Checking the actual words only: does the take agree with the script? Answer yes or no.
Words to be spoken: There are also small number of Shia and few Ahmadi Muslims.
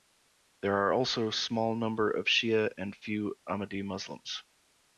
yes